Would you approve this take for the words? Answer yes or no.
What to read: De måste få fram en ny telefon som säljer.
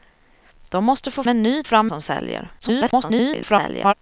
no